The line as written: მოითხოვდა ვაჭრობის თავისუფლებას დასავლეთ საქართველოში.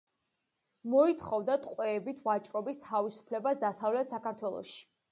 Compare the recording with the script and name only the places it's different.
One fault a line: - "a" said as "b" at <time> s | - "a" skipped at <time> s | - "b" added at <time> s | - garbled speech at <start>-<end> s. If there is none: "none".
- "ტყვეებით" added at 1.7 s